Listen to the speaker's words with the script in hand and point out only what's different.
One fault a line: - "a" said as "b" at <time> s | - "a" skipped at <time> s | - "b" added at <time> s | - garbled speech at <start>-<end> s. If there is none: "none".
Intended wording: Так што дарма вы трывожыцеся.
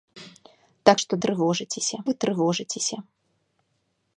- "дарма" said as "трывожыцеся" at 1.2 s